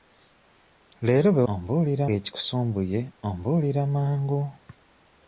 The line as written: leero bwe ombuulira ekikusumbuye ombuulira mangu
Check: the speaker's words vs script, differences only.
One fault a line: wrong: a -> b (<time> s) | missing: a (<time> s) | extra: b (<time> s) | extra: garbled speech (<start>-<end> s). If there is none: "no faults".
no faults